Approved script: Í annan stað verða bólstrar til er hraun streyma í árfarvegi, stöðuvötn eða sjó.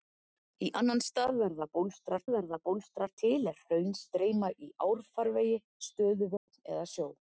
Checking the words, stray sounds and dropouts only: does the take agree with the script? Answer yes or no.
no